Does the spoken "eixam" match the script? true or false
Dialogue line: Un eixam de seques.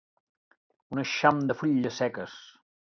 true